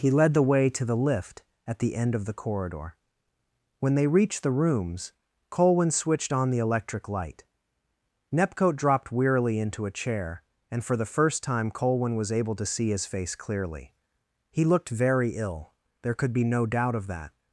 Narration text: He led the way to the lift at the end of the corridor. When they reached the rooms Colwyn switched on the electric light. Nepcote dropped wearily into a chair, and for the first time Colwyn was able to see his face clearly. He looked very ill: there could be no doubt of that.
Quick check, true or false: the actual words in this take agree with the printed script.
true